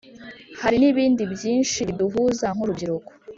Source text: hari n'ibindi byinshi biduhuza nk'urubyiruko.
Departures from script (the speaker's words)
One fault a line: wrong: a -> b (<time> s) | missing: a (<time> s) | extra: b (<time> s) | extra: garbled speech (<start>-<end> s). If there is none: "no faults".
no faults